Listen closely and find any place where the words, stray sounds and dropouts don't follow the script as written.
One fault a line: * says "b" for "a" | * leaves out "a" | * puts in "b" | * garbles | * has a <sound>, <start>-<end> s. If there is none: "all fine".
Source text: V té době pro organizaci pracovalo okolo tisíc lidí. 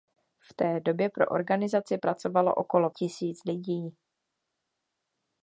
all fine